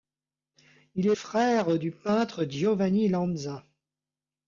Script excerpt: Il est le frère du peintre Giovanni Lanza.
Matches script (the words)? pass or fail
fail